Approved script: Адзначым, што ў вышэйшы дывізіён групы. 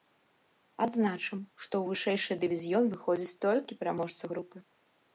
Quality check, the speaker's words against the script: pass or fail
fail